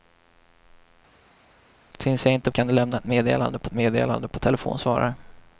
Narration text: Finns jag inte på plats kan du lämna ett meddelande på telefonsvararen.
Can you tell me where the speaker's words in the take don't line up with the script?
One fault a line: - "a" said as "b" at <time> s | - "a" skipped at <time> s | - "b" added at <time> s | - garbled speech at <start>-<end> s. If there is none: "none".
- "på plats" skipped at 2.5 s
- "meddelande på" added at 3.7 s